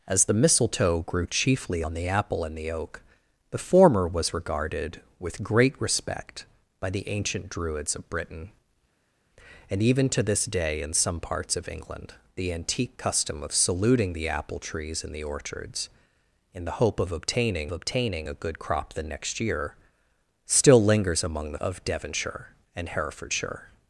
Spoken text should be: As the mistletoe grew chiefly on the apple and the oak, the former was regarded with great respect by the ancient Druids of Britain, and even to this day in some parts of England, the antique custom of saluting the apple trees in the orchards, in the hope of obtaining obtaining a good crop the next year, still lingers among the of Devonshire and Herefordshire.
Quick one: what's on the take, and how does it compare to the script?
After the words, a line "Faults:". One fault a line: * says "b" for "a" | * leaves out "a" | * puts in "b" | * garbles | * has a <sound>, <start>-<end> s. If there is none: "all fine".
As the mistletoe grew chiefly on the apple and the oak, the former was regarded with great respect by the ancient Druids of Britain, and even to this day in some parts of England, the antique custom of saluting the apple trees in the orchards, in the hope of obtaining obtaining a good crop the next year, still lingers among the of Devonshire and Herefordshire.
Faults:
all fine